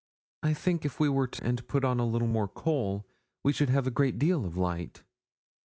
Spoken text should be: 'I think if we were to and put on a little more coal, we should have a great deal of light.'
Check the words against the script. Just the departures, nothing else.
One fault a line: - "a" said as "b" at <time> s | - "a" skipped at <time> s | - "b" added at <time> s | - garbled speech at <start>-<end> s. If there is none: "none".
none